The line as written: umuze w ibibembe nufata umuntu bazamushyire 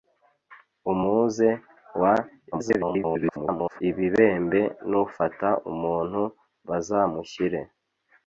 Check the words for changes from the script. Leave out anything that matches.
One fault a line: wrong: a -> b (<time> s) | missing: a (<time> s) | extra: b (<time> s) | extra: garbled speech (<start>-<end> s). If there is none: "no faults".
extra: garbled speech (2.5-3.8 s)